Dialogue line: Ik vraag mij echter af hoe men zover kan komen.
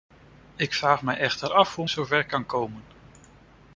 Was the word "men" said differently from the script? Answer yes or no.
yes